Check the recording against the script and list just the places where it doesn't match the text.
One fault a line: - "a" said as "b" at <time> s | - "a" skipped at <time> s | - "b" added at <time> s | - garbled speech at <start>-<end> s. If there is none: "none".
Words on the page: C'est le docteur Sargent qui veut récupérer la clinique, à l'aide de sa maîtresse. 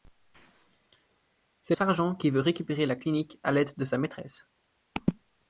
- "le docteur" skipped at 1.8 s